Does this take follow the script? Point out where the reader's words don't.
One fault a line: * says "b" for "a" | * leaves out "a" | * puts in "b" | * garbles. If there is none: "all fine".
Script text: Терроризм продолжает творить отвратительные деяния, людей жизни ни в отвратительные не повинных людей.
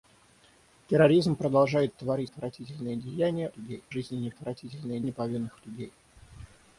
all fine